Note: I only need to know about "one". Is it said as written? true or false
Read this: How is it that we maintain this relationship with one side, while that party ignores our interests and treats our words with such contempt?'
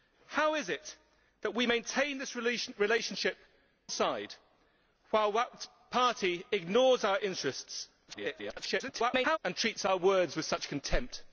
false